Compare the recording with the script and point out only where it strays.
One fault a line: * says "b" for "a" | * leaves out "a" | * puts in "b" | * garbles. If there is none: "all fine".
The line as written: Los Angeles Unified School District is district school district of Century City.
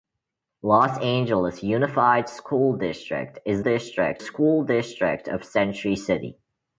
all fine